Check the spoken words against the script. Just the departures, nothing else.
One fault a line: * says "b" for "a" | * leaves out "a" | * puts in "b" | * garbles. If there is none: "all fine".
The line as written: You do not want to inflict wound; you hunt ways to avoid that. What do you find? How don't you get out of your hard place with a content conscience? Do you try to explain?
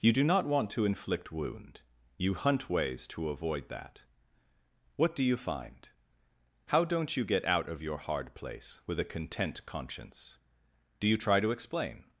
all fine